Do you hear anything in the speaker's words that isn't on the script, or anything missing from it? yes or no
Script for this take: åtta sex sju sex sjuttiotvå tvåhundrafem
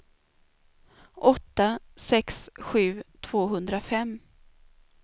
yes